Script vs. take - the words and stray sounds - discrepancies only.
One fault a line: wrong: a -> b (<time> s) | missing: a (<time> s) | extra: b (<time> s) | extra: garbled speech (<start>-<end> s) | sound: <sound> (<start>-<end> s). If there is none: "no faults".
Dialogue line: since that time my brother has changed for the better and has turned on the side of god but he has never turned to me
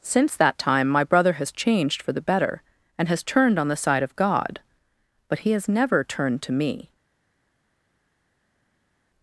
no faults